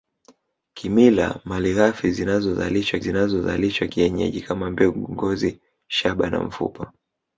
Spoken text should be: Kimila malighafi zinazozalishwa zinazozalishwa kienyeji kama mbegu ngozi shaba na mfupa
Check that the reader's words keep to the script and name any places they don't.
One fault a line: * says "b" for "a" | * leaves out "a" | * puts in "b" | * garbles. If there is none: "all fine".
all fine